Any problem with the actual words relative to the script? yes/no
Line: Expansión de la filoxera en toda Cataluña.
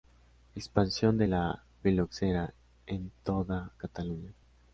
no